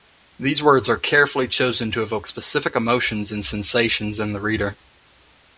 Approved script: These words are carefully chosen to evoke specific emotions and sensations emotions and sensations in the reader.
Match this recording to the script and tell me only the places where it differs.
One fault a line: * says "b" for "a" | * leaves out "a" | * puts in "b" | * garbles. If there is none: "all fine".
* leaves out "emotions and sensations"